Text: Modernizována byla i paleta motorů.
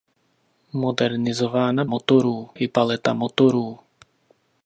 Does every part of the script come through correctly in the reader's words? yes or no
no